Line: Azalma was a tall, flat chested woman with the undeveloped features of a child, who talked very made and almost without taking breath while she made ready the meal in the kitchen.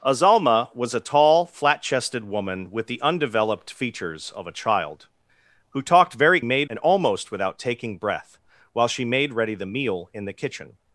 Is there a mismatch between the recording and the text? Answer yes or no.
no